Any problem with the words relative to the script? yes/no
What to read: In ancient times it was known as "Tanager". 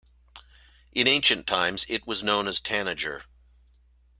no